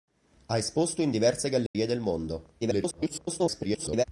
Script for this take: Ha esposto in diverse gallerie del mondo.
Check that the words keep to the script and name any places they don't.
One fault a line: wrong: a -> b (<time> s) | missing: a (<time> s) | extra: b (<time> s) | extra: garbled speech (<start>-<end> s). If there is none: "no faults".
extra: garbled speech (2.6-4.0 s)